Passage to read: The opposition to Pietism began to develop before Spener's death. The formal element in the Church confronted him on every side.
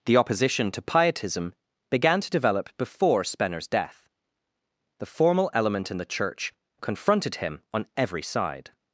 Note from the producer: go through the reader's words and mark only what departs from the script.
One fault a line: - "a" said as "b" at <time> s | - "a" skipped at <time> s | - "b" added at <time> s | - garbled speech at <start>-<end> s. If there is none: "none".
none